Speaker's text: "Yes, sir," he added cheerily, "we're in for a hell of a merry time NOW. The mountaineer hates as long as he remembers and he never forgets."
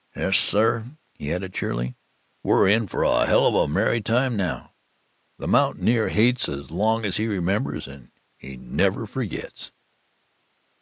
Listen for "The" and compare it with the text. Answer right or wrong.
right